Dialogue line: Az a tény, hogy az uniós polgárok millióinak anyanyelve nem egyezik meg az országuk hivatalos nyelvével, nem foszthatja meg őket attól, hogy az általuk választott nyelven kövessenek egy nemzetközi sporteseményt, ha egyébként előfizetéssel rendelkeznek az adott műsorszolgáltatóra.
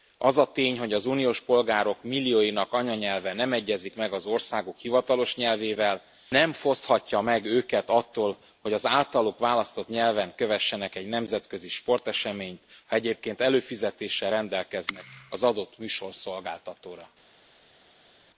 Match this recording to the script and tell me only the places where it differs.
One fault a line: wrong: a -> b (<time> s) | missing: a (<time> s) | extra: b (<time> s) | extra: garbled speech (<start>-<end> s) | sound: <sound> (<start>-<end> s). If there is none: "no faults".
no faults